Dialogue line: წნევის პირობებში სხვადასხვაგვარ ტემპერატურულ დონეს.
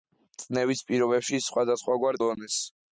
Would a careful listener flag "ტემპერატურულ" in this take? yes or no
yes